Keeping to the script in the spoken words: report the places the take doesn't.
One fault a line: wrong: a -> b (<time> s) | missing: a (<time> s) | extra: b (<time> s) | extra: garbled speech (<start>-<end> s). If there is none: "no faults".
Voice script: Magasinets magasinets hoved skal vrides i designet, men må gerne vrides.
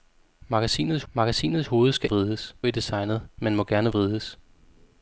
no faults